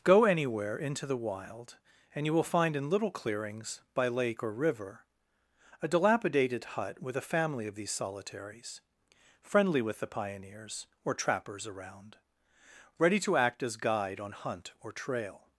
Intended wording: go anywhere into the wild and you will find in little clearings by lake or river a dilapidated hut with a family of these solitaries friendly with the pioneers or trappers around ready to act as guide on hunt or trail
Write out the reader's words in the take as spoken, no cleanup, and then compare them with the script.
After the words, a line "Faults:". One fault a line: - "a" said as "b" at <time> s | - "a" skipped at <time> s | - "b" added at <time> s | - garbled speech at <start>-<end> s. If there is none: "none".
go anywhere into the wild and you will find in little clearings by lake or river a dilapidated hut with a family of these solitaries friendly with the pioneers or trappers around ready to act as guide on hunt or trail
Faults:
none